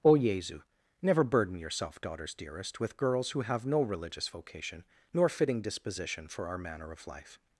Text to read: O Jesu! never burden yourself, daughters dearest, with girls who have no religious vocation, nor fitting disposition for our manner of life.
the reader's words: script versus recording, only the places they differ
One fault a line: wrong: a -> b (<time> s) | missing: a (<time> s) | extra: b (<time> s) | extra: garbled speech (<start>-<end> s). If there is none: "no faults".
no faults